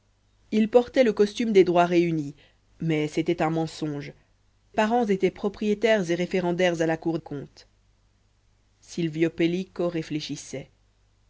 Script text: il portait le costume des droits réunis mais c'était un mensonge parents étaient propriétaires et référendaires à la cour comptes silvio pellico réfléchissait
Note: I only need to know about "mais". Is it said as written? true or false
true